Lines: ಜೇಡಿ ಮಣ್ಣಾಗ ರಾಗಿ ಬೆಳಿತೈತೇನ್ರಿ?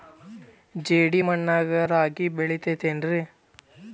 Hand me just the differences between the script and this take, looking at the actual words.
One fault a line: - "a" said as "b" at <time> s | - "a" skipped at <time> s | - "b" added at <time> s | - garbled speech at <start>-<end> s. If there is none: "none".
none